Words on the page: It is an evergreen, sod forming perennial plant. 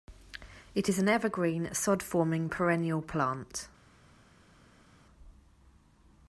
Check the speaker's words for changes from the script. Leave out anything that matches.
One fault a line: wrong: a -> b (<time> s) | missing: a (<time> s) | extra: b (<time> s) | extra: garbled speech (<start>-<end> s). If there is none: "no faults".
no faults